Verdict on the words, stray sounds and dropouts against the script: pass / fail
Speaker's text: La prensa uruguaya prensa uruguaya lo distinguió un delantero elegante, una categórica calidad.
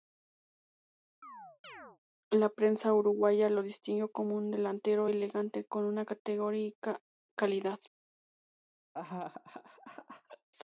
fail